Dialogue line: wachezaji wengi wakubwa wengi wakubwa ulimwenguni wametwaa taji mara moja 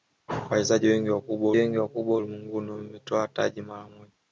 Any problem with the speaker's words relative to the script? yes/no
no